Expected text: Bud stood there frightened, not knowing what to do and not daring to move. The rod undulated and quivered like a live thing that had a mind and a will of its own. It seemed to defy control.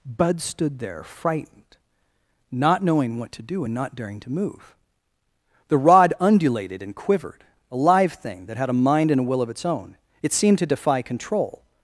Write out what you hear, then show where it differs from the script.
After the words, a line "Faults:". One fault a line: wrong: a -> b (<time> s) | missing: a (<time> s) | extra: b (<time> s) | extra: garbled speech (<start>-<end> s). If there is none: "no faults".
Bud stood there frightened, not knowing what to do and not daring to move. The rod undulated and quivered a live thing that had a mind and a will of its own. It seemed to defy control.
Faults:
missing: like (7.4 s)